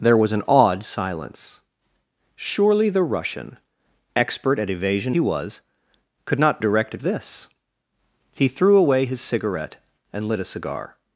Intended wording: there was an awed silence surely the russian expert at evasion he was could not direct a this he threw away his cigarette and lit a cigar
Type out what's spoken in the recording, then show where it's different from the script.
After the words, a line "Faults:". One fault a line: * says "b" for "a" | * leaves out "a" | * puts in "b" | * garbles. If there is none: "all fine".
there was an awed silence surely the russian expert at evasion he was could not direct a this he threw away his cigarette and lit a cigar
Faults:
all fine